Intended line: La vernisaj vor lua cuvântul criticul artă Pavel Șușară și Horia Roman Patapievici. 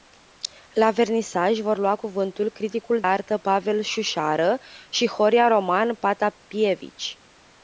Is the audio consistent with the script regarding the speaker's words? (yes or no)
yes